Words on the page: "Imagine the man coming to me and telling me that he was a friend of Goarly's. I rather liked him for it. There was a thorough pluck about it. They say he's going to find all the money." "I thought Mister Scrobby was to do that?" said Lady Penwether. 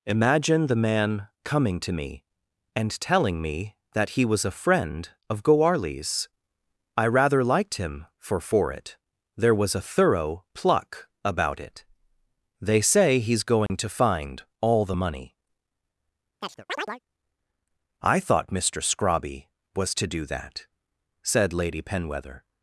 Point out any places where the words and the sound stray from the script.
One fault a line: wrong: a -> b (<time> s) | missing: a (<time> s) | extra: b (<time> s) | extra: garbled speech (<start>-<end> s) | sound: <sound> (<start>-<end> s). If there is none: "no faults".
extra: for (8.4 s)
sound: dropout (13.7-13.7 s)
sound: chirp (16.4-17.0 s)